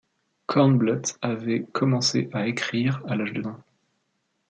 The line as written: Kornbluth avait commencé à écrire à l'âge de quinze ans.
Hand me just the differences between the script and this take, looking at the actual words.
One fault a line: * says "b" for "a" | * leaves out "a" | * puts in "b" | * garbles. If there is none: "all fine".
* leaves out "quinze"